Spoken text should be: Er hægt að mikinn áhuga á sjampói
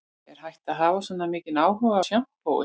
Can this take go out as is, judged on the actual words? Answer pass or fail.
fail